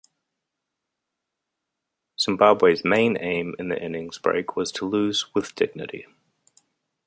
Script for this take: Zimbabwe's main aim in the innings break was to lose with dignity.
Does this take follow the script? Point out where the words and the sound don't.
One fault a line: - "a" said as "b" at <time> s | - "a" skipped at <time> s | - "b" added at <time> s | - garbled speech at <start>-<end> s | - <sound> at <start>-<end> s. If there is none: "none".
none